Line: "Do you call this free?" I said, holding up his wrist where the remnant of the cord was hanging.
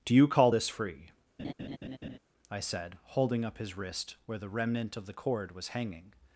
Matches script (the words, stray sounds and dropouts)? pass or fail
fail